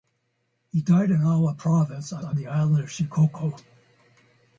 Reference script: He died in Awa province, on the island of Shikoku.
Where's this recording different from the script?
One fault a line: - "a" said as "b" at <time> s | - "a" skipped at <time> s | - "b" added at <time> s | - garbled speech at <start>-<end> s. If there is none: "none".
- "on" added at 2.2 s